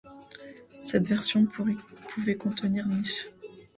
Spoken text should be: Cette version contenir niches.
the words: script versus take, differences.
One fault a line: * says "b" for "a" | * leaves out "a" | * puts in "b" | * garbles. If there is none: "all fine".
* puts in "pouvait"